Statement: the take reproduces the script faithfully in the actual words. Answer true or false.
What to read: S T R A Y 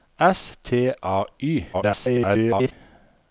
false